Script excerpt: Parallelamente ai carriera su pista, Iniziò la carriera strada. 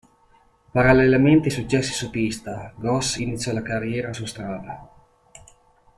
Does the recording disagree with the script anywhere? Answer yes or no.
yes